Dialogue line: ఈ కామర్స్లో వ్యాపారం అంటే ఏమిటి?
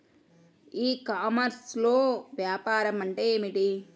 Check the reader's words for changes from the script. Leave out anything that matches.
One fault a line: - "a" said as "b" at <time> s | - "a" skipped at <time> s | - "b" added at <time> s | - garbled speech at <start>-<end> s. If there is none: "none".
none